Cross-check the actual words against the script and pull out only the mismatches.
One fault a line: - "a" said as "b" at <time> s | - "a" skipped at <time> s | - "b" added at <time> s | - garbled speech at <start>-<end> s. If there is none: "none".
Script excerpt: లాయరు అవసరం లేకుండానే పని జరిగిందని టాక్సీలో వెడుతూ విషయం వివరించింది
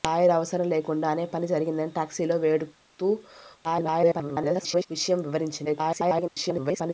- garbled speech at 3.6-4.9 s
- garbled speech at 5.6-6.9 s